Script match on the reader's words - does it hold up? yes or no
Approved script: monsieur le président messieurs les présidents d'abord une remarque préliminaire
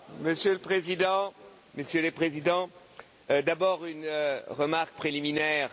yes